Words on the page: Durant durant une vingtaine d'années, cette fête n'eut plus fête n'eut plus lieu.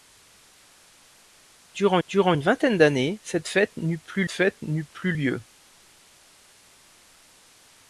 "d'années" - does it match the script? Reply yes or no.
yes